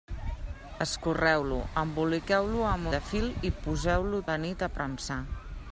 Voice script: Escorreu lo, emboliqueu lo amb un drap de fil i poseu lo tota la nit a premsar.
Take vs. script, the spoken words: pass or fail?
fail